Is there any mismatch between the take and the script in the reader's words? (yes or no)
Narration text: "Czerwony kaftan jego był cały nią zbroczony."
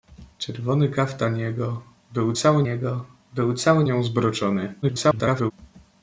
yes